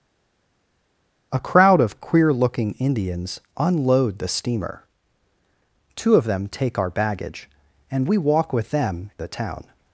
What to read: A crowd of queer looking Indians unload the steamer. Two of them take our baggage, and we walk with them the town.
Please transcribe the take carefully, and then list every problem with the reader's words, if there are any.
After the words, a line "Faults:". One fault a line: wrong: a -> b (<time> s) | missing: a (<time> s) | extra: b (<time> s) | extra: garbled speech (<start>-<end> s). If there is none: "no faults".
A crowd of queer looking Indians unload the steamer. Two of them take our baggage, and we walk with them the town.
Faults:
no faults